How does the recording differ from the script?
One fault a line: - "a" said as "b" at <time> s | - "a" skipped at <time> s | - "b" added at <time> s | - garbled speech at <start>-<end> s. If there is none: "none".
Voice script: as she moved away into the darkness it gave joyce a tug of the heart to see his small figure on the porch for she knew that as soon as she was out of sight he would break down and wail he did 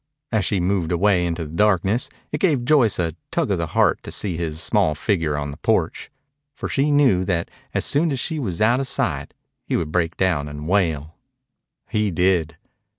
none